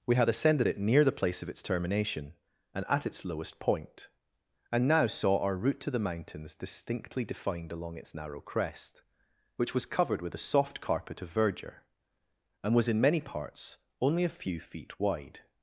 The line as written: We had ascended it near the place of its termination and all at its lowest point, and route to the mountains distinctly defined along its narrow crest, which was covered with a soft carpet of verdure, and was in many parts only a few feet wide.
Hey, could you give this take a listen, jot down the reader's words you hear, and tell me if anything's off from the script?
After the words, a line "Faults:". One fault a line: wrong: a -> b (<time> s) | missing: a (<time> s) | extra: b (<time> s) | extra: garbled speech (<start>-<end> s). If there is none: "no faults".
We had ascended it near the place of its termination and at its lowest point, and now saw our route to the mountains distinctly defined along its narrow crest, which was covered with a soft carpet of verdure, and was in many parts only a few feet wide.
Faults:
missing: all (2.8 s)
extra: now saw our (4.9 s)